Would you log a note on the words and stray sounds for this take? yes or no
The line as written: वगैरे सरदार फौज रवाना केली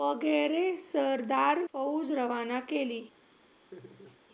yes